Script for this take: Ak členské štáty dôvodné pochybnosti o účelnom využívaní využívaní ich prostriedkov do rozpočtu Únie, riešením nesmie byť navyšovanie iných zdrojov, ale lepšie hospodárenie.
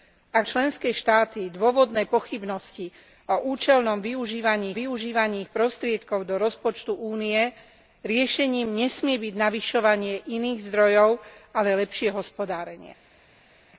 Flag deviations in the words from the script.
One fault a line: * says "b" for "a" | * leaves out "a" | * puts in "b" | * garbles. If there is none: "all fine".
all fine